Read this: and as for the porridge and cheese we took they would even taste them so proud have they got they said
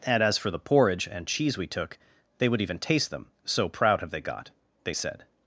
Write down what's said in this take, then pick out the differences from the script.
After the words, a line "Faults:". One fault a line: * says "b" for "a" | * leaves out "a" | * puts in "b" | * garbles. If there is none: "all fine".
and as for the porridge and cheese we took they would even taste them so proud have they got they said
Faults:
all fine